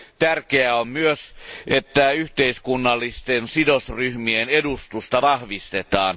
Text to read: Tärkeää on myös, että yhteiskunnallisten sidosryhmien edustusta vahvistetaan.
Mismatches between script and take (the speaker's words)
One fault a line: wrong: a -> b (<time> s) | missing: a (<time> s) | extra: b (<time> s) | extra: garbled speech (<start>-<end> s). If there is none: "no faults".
no faults